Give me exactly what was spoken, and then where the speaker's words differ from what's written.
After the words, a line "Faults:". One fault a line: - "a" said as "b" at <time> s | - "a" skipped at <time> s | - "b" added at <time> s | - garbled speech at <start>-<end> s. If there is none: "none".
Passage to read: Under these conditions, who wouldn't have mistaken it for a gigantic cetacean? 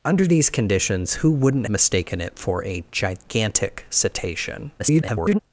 Under these conditions, who wouldn't mistaken it for a gigantic cetacean? [garbled]
Faults:
- "have" skipped at 1.7 s
- garbled speech at 4.8-5.4 s